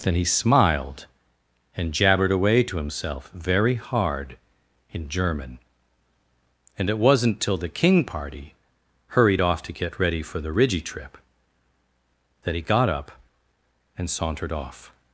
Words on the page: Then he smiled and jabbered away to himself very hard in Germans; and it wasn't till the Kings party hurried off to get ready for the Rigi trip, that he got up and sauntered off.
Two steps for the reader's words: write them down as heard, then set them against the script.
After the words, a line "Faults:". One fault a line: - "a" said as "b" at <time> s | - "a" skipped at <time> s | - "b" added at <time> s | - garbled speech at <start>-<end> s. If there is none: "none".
Then he smiled and jabbered away to himself very hard in German; and it wasn't till the King party hurried off to get ready for the Rigi trip, that he got up and sauntered off.
Faults:
- "Germans" said as "German" at 5.1 s
- "Kings" said as "King" at 7.7 s